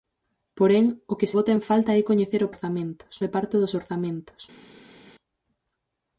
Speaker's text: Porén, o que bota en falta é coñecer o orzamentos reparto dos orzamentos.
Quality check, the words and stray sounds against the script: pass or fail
pass